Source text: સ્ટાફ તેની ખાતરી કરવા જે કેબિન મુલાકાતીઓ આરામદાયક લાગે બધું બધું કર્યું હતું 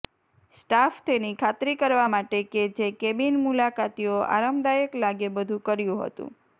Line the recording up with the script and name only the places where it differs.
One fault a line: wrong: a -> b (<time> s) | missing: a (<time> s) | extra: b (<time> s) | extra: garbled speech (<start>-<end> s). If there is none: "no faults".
extra: માટે કે (2.1 s)
missing: બધું (5.6 s)